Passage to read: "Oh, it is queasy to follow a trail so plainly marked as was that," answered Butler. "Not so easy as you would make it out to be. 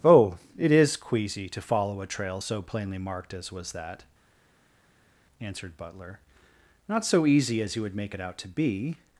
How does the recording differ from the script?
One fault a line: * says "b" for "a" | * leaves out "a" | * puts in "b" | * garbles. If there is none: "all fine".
all fine